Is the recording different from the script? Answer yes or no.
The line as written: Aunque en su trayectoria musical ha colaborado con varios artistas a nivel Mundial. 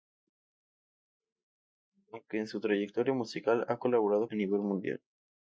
yes